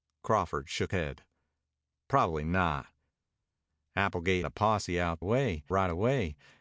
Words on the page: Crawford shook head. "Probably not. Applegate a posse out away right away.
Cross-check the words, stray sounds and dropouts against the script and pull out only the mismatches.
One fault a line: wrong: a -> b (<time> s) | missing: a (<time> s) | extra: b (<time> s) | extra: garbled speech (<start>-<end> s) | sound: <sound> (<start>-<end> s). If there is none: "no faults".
no faults